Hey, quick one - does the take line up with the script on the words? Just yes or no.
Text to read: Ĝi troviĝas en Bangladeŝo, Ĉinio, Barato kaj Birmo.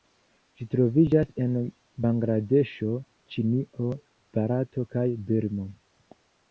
yes